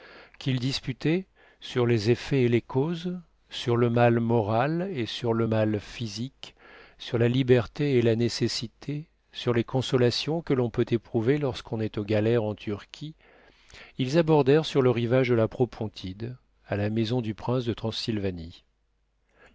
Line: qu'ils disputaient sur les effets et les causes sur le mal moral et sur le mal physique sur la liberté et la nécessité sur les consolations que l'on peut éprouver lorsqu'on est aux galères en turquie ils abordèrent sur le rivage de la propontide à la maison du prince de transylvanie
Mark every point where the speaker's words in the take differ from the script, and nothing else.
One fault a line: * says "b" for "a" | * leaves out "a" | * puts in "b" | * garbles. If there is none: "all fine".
all fine